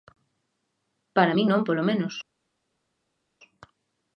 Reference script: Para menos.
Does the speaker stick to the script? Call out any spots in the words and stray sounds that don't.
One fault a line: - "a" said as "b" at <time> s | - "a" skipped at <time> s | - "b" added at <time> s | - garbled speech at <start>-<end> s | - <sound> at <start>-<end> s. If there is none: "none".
- "min non polo" added at 1.4 s